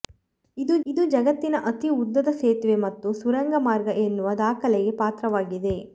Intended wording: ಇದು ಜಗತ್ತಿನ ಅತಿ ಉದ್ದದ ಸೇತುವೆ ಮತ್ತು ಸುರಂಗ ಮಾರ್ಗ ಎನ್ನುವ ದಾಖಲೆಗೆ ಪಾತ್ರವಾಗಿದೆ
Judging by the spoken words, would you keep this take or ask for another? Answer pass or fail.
fail